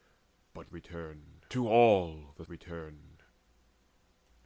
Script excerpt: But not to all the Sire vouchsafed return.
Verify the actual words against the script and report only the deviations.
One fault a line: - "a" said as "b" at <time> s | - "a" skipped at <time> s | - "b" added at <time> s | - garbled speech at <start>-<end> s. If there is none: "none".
- "not" said as "return" at 0.7 s
- "Sire vouchsafed" skipped at 2.5 s